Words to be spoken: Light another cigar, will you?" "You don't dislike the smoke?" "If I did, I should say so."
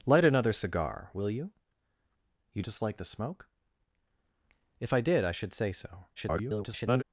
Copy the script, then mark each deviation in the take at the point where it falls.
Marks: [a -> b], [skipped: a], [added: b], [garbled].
Light another cigar, will you?" "You [skipped: don't] dislike the smoke?" "If I did, I should say so." [garbled]